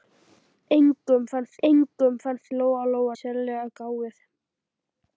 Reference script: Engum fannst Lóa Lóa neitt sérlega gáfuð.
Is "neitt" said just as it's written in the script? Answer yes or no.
no